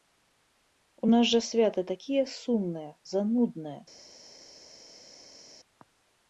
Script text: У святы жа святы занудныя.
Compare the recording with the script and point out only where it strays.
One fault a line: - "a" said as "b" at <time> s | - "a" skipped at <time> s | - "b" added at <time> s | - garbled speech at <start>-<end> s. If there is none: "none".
- "святы" said as "нас" at 1.1 s
- "такія сумныя" added at 1.9 s